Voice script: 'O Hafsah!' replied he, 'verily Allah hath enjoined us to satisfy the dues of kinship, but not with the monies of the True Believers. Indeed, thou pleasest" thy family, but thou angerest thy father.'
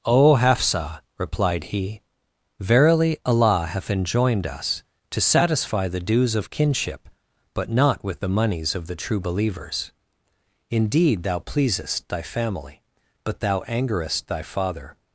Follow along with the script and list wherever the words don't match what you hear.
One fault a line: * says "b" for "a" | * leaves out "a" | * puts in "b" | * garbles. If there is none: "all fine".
all fine